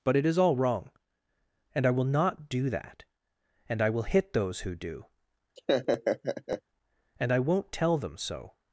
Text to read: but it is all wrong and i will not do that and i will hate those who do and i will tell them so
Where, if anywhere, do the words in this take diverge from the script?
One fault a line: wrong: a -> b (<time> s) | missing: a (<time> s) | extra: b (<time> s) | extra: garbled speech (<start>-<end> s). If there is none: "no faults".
wrong: hate -> hit (4.0 s)
wrong: will -> won't (7.4 s)